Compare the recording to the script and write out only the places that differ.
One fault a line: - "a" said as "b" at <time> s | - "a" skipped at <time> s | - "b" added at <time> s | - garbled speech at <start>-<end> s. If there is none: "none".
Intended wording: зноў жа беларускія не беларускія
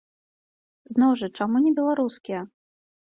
- "беларускія" said as "чаму" at 1.4 s